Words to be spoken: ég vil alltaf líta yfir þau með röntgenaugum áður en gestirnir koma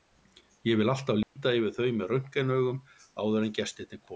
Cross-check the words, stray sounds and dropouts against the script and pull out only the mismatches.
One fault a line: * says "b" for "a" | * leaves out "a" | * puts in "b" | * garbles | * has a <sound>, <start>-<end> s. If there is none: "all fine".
* has a dropout, 1.2-1.4 s